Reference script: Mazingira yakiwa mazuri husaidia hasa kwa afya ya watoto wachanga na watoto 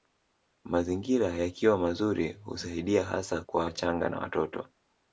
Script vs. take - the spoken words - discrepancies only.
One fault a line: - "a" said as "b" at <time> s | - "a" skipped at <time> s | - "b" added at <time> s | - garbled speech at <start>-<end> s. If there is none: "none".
- "afya ya watoto" skipped at 3.7 s